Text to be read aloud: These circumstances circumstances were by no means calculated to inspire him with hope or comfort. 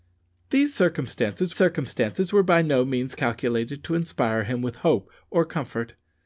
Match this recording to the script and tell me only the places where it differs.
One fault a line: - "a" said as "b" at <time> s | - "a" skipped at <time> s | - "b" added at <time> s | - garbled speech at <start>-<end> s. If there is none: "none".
none